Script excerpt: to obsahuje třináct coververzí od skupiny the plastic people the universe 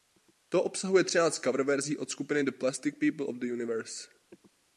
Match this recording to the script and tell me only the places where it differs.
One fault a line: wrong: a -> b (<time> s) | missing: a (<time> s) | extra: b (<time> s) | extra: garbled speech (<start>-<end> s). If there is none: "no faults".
extra: of (3.2 s)